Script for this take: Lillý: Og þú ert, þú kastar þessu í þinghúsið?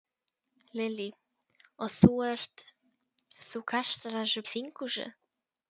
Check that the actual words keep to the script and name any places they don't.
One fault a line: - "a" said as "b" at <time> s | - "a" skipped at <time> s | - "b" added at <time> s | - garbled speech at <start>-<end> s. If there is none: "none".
none